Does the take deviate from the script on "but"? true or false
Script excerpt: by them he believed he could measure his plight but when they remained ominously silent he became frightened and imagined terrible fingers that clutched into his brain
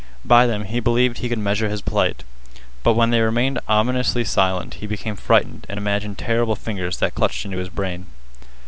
false